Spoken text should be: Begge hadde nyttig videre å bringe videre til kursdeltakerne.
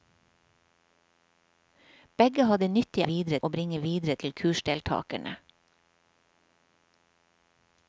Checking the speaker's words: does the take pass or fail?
pass